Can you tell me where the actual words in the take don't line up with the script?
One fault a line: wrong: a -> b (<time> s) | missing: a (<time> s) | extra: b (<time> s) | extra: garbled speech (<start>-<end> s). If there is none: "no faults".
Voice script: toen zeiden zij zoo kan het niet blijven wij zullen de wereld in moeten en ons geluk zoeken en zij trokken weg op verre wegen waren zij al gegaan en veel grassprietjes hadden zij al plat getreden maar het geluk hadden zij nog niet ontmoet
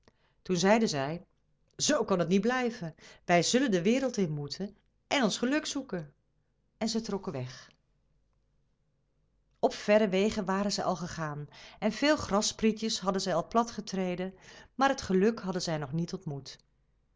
no faults